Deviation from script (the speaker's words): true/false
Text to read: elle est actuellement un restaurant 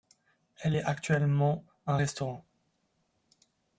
false